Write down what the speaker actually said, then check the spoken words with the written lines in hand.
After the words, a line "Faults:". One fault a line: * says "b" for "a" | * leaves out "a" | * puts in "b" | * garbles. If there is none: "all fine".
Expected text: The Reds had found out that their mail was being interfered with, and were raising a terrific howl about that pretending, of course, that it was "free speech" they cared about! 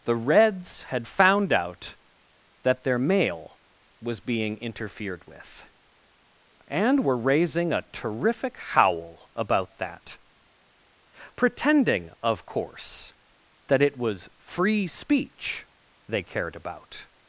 The Reds had found out that their mail was being interfered with, and were raising a terrific howl about that pretending, of course, that it was "free speech" they cared about!
Faults:
all fine